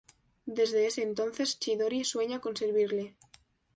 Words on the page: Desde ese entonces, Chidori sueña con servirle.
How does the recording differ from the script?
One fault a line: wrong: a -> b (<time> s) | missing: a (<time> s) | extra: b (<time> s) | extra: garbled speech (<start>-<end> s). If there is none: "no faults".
no faults